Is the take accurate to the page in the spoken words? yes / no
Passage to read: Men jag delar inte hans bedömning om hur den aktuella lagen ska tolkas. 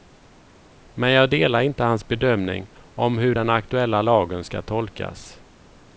yes